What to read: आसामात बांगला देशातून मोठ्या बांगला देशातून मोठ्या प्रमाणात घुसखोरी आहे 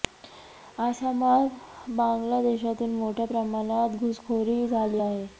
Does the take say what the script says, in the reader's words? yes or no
no